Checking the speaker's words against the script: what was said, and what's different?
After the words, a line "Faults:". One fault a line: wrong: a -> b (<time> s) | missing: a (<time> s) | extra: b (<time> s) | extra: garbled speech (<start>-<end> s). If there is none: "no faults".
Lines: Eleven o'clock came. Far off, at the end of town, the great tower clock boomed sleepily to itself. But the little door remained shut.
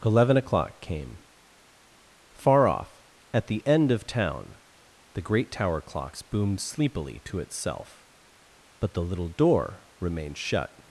Eleven o'clock came. Far off, at the end of town, the great tower clocks boomed sleepily to itself. But the little door remained shut.
Faults:
wrong: clock -> clocks (5.8 s)